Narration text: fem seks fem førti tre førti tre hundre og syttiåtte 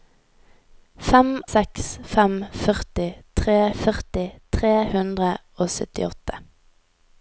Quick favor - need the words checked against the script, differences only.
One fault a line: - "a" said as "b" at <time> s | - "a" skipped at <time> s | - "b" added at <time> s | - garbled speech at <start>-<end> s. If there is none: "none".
none